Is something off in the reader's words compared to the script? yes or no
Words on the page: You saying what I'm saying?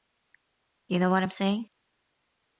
yes